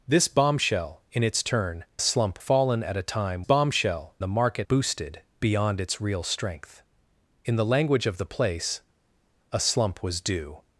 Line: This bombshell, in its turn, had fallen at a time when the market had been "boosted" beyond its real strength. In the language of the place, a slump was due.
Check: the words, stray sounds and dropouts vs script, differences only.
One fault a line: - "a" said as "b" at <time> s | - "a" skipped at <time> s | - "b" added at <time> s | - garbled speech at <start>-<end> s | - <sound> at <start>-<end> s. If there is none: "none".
- "had" said as "slump" at 2.0 s
- "when" said as "bombshell" at 3.4 s
- "had been" skipped at 4.7 s